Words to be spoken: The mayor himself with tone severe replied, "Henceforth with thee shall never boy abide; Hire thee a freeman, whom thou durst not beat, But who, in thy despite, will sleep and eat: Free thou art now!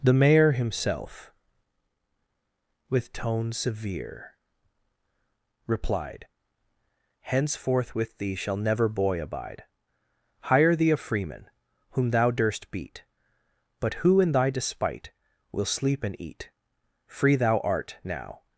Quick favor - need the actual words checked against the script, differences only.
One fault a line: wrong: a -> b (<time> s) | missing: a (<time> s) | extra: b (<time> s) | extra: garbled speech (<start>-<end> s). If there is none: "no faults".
missing: not (12.7 s)